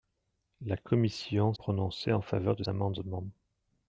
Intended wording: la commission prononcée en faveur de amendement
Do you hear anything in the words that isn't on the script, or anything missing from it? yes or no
no